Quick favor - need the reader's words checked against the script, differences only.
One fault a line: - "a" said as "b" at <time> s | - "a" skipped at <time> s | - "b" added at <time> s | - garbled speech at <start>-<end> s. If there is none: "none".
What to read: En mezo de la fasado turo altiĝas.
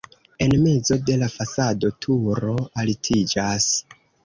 none